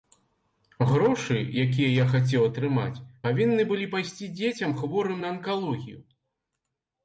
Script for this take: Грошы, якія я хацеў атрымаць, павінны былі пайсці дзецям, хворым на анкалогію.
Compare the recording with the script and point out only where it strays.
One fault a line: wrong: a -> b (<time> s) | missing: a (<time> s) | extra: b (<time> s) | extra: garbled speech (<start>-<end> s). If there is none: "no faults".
no faults